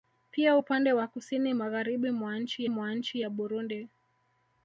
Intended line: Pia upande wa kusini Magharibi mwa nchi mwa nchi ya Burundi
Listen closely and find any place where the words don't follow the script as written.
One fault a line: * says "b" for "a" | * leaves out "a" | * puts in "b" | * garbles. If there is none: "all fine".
all fine